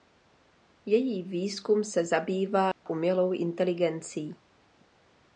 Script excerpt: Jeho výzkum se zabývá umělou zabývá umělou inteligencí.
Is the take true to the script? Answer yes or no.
no